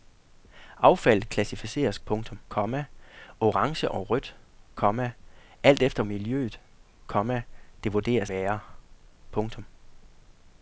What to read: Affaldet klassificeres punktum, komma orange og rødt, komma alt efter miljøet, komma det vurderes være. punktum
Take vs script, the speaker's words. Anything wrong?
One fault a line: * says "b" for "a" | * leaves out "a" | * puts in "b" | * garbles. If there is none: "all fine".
all fine